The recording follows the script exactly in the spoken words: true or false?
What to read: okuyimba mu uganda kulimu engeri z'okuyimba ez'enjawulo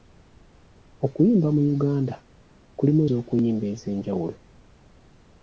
false